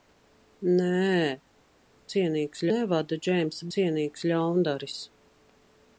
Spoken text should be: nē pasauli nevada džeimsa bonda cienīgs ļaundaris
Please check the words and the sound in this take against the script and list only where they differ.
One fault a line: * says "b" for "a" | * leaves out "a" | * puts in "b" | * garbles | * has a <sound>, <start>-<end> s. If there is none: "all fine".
* says "cienīgs" for "pasauli"
* leaves out "bonda"